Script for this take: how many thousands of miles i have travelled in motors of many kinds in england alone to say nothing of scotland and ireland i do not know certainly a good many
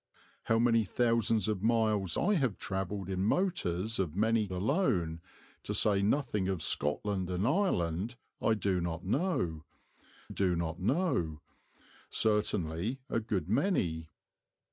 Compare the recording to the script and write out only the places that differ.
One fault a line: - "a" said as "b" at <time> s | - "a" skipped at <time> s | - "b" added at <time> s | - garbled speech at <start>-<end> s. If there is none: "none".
- "kinds in england" skipped at 4.5 s
- "do not know" added at 10.3 s